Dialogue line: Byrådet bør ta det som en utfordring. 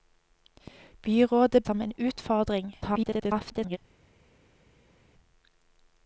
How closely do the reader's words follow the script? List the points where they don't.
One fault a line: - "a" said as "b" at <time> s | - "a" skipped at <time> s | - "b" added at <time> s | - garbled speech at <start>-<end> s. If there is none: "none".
- "bør ta det" skipped at 1.6 s
- garbled speech at 2.8-3.8 s